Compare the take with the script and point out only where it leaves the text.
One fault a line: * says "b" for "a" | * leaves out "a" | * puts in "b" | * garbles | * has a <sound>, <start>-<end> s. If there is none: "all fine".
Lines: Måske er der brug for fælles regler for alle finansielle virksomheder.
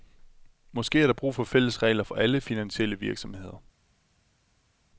all fine